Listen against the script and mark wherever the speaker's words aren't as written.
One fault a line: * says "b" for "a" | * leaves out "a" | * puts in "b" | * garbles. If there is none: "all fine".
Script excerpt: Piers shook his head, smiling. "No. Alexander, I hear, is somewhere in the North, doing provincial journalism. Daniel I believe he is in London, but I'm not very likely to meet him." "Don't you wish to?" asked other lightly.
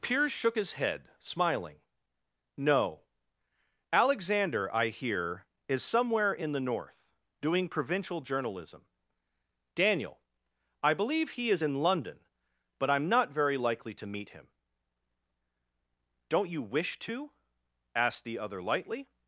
* puts in "the"